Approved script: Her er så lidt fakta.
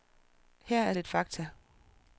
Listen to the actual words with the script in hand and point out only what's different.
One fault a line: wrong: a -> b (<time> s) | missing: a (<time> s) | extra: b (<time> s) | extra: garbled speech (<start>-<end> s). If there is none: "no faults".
missing: så (0.9 s)